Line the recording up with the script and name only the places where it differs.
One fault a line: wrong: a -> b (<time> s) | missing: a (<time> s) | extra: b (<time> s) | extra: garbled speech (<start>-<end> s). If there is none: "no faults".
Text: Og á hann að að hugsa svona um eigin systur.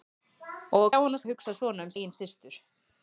no faults